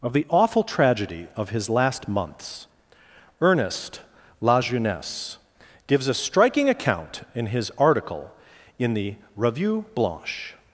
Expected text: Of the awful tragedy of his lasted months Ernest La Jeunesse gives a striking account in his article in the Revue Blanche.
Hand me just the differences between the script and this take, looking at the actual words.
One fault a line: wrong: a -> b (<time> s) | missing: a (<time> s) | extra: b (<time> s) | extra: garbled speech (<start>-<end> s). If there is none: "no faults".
wrong: lasted -> last (1.7 s)